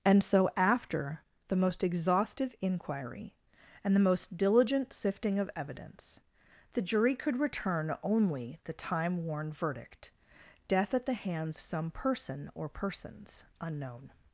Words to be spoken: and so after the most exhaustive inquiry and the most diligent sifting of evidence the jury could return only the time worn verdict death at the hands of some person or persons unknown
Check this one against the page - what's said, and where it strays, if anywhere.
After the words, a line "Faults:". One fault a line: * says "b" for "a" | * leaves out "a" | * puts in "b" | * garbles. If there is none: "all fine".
and so after the most exhaustive inquiry and the most diligent sifting of evidence the jury could return only the time worn verdict death at the hands some person or persons unknown
Faults:
* leaves out "of"